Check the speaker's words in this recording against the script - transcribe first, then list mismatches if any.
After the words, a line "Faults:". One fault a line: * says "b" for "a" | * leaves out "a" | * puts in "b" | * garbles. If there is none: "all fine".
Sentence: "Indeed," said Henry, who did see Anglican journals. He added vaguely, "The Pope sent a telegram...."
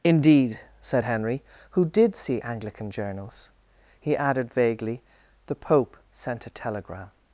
"Indeed," said Henry, who did see Anglican journals. He added vaguely, "The Pope sent a telegram...."
Faults:
all fine